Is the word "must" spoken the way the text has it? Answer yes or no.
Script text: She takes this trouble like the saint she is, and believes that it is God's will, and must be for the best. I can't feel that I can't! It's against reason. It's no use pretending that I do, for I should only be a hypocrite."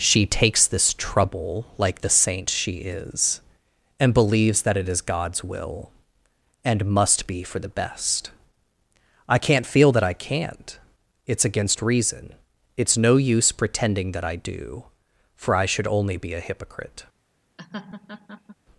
yes